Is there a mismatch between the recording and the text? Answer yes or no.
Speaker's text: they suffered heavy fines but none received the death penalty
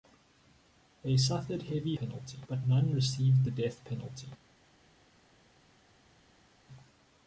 yes